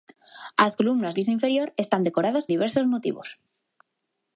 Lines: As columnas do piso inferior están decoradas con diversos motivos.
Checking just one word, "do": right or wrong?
wrong